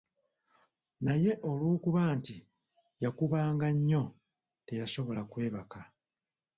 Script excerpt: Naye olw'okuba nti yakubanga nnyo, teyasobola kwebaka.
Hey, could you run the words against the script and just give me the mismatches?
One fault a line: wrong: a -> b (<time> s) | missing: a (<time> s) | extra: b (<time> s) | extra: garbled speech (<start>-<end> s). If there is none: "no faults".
no faults